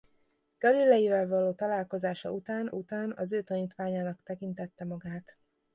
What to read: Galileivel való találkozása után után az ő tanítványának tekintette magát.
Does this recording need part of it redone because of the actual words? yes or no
no